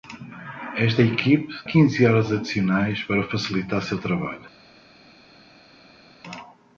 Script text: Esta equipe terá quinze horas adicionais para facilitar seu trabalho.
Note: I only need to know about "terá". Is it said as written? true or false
false